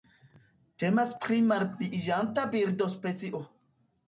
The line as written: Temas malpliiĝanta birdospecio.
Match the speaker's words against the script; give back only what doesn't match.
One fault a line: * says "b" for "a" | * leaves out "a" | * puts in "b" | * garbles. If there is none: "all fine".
* puts in "pri"